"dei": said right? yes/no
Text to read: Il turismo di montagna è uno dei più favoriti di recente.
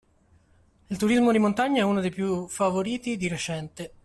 yes